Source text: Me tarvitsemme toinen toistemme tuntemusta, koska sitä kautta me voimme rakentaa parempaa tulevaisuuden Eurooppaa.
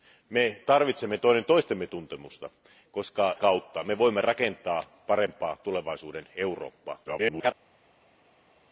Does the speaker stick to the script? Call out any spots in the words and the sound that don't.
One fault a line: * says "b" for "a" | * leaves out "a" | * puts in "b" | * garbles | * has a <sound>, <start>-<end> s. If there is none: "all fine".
* leaves out "sitä"
* garbles